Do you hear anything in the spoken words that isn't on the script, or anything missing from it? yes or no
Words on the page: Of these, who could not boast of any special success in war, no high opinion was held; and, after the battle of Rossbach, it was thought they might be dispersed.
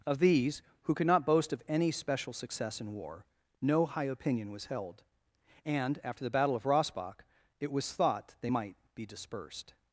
no